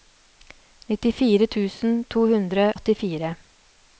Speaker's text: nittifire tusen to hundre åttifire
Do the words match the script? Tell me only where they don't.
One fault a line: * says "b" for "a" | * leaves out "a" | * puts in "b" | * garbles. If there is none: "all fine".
all fine